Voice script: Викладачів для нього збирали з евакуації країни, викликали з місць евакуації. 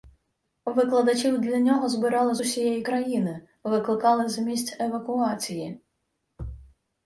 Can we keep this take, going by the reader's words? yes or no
no